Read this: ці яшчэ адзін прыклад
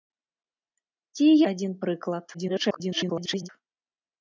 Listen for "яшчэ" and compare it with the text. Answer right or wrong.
wrong